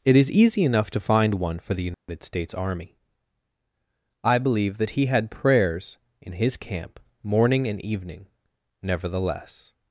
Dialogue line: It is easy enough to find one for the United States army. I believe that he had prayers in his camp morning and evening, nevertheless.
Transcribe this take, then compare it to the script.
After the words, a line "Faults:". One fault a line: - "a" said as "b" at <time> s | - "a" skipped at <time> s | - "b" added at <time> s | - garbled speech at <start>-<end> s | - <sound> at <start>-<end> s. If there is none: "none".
It is easy enough to find one for the United States army. I believe that he had prayers in his camp morning and evening, nevertheless.
Faults:
- dropout at 1.9-2.1 s